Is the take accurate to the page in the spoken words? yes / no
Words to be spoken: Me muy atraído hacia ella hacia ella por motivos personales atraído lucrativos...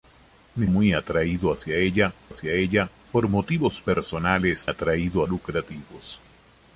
yes